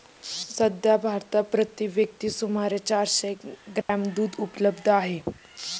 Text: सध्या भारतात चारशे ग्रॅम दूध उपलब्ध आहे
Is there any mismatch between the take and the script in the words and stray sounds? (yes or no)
yes